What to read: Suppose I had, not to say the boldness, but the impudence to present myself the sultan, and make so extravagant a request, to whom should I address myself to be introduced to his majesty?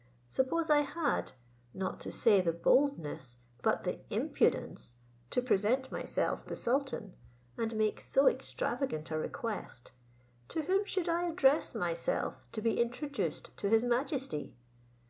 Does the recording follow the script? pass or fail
pass